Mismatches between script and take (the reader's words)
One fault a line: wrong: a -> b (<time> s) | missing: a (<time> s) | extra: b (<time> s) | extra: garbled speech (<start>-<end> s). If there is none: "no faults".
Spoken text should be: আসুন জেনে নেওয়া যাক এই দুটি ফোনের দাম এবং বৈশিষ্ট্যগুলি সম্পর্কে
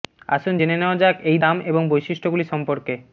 missing: দুটি ফোনের (1.4 s)